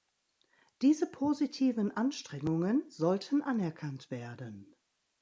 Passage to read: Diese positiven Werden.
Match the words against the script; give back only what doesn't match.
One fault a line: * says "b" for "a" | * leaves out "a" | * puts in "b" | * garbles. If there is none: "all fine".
* puts in "Anstrengungen sollten anerkannt"